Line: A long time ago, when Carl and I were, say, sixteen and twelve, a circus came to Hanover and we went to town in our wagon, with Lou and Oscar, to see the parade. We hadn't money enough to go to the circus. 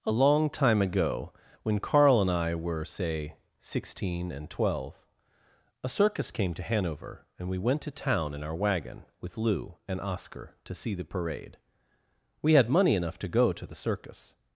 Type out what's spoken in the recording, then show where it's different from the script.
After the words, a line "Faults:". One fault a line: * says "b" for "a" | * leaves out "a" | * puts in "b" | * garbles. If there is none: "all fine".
A long time ago, when Carl and I were, say, sixteen and twelve, a circus came to Hanover and we went to town in our wagon, with Lou and Oscar, to see the parade. We had money enough to go to the circus.
Faults:
* says "had" for "hadn't"